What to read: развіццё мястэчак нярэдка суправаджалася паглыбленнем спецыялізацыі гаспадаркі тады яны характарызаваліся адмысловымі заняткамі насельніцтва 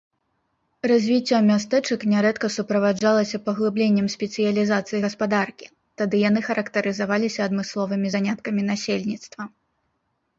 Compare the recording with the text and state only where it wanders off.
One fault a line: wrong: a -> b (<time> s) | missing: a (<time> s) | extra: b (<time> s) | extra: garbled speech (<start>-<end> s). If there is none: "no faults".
no faults